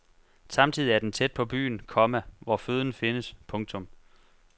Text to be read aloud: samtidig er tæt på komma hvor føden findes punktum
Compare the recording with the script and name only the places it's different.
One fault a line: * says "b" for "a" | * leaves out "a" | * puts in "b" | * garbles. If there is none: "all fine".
* puts in "den"
* puts in "byen"